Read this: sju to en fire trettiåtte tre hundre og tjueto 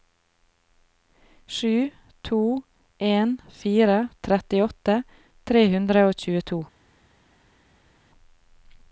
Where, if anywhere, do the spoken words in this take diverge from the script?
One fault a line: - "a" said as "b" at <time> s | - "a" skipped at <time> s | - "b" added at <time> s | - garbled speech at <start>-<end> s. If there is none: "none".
none